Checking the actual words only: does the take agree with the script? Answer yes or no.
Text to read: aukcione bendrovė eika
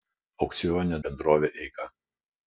yes